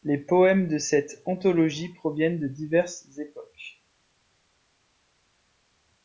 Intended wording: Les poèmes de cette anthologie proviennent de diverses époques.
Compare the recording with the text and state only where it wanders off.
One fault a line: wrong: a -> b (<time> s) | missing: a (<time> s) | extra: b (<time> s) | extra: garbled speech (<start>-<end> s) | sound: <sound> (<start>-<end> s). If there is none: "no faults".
no faults